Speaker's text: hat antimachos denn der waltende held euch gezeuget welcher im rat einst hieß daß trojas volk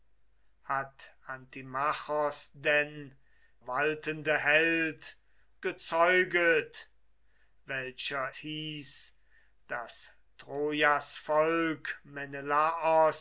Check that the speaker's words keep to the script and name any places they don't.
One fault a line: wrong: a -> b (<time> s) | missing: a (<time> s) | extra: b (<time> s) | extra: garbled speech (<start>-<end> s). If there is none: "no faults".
missing: der (3.1 s)
missing: euch (5.2 s)
missing: im rat einst (8.3 s)